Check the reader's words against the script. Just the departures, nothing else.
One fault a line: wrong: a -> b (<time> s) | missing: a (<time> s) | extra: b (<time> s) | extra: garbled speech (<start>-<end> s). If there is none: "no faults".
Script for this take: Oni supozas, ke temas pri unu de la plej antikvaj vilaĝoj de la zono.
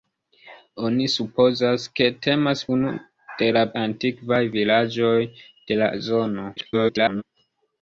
missing: pri (2.6 s)
missing: plej (3.6 s)
extra: garbled speech (6.6-7.2 s)